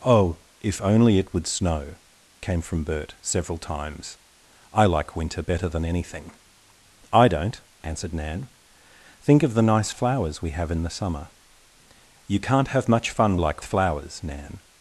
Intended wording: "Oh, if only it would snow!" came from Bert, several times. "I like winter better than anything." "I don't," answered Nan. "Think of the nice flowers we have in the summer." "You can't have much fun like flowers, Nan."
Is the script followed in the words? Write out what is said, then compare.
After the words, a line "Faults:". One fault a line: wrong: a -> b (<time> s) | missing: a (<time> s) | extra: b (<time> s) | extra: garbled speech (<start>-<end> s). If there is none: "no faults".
"Oh, if only it would snow!" came from Bert, several times. "I like winter better than anything." "I don't," answered Nan. "Think of the nice flowers we have in the summer." "You can't have much fun like flowers, Nan."
Faults:
no faults